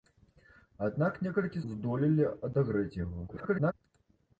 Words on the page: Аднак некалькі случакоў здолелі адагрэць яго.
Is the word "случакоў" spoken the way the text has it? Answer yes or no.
no